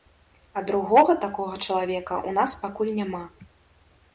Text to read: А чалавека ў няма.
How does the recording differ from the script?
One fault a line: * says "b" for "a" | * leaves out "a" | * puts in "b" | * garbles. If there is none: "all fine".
* puts in "другога такога"
* puts in "нас пакуль"